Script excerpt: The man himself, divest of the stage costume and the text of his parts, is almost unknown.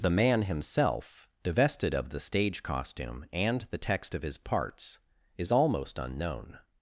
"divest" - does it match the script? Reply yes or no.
no